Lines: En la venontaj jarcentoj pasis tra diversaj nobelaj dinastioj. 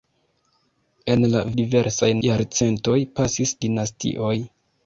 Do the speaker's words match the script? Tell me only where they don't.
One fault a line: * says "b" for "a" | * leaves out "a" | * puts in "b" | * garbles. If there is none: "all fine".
* says "diversaj" for "venontaj"
* leaves out "tra diversaj nobelaj"